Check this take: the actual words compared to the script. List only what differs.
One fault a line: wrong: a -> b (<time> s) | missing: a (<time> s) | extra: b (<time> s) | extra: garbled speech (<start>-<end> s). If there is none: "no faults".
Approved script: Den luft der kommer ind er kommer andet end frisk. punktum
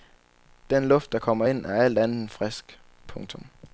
wrong: kommer -> alt (1.8 s)